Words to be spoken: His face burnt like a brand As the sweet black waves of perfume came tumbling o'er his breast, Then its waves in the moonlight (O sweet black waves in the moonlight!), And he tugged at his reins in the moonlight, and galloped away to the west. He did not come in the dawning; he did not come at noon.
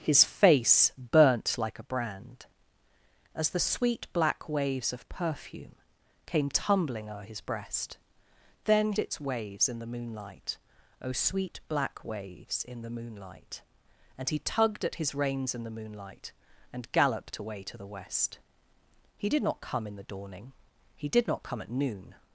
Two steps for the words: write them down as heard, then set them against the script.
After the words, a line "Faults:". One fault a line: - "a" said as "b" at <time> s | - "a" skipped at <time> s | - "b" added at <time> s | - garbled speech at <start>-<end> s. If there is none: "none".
His face burnt like a brand As the sweet black waves of perfume came tumbling o'er his breast, Then its waves in the moonlight (O sweet black waves in the moonlight!), And he tugged at his reins in the moonlight, and galloped away to the west. He did not come in the dawning; he did not come at noon.
Faults:
none